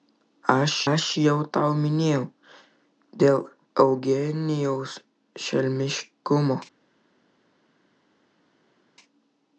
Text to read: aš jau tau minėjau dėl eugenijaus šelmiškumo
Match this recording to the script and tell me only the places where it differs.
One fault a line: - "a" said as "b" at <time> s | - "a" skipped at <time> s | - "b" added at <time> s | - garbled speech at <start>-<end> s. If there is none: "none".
- "aš" added at 0.9 s